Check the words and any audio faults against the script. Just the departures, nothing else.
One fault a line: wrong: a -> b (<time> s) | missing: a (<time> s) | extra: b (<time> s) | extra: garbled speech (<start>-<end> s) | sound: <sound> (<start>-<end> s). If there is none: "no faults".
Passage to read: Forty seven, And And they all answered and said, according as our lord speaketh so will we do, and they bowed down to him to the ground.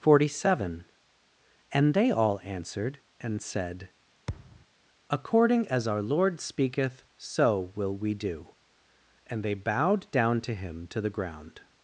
missing: And (1.9 s)
sound: thud (4.3-4.7 s)